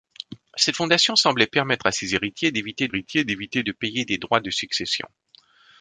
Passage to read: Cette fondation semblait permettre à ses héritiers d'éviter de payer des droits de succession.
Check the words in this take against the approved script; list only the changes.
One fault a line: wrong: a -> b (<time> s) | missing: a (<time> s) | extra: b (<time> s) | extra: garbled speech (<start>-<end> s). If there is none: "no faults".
extra: héritiers d'éviter (2.9 s)